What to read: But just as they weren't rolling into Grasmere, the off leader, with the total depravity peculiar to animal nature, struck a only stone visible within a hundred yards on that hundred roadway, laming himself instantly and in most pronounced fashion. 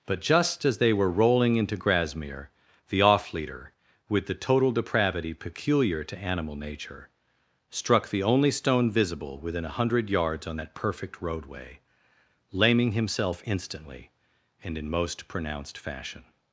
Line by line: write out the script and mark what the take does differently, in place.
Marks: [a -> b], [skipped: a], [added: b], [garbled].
But just as they [weren't -> were] rolling into Grasmere, the off leader, with the total depravity peculiar to animal nature, struck [a -> the] only stone visible within a hundred yards on that [hundred -> perfect] roadway, laming himself instantly and in most pronounced fashion.